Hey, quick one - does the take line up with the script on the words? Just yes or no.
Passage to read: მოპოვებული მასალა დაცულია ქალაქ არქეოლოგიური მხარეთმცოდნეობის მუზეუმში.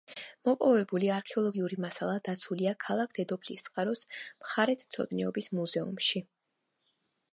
no